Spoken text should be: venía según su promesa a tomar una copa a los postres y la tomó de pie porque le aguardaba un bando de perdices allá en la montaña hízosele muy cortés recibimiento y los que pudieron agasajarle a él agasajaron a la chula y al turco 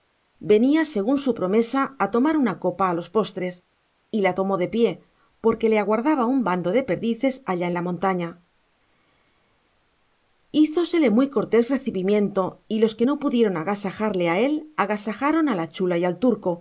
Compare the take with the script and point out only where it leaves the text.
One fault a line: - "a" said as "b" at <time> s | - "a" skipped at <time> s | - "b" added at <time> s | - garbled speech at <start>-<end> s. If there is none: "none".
- "no" added at 13.0 s